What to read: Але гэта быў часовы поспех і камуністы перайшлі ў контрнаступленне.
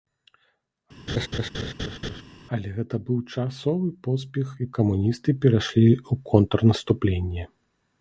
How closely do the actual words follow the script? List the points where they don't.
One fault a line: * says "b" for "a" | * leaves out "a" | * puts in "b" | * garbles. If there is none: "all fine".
all fine